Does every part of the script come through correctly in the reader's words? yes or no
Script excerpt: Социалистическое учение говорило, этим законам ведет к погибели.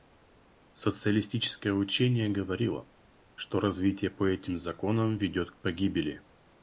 no